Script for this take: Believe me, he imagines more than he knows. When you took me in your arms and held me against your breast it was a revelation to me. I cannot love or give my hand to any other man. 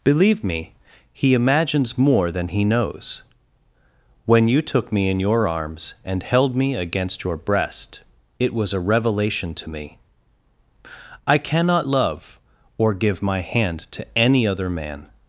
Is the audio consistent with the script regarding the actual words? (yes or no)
yes